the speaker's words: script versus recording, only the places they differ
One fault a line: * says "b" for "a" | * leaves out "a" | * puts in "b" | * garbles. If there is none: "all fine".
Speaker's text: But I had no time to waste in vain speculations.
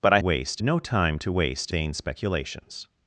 * says "waste" for "had"
* leaves out "in"